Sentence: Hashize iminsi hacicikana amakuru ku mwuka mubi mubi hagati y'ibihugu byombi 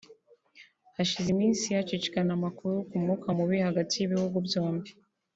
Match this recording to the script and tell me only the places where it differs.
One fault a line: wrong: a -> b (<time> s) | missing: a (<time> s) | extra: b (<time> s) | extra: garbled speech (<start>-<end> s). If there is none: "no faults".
missing: mubi (3.6 s)